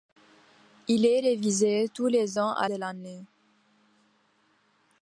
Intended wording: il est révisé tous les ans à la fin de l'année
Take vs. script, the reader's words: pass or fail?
fail